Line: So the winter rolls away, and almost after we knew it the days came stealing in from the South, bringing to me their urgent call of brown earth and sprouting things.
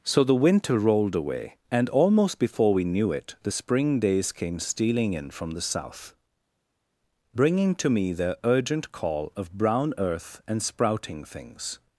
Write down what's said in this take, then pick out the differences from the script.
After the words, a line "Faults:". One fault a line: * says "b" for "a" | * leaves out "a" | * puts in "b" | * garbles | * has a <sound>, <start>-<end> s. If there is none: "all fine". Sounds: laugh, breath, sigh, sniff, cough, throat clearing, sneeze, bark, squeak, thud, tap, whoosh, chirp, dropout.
So the winter rolled away, and almost before we knew it the spring days came stealing in from the South, bringing to me their urgent call of brown earth and sprouting things.
Faults:
* says "rolled" for "rolls"
* says "before" for "after"
* puts in "spring"